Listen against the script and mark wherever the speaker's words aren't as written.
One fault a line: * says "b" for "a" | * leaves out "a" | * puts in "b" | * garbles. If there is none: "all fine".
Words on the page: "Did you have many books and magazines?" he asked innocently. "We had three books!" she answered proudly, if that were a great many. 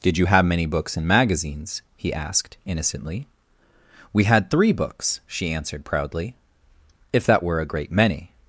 all fine